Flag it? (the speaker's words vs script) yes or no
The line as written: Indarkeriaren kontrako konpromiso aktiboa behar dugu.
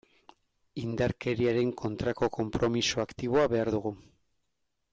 no